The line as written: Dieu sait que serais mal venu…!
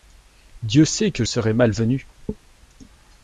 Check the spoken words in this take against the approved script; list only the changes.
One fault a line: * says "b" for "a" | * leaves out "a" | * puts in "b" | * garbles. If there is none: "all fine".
all fine